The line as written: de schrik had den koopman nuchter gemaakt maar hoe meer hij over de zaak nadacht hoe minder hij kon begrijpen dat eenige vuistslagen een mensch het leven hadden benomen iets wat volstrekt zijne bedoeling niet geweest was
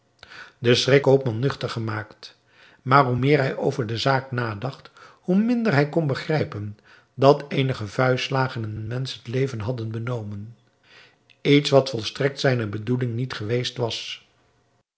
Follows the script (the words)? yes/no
no